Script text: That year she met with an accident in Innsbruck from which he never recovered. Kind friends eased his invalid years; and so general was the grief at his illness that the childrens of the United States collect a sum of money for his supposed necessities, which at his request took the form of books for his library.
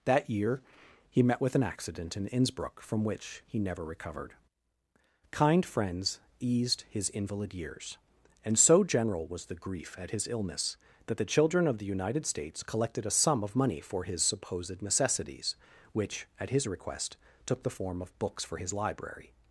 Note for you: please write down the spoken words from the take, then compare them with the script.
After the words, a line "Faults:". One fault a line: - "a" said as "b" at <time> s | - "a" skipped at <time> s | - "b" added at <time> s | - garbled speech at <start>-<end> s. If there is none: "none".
That year he met with an accident in Innsbruck from which he never recovered. Kind friends eased his invalid years; and so general was the grief at his illness that the children of the United States collected a sum of money for his supposed necessities, which at his request took the form of books for his library.
Faults:
- "she" said as "he" at 1.1 s
- "childrens" said as "children" at 11.3 s
- "collect" said as "collected" at 12.6 s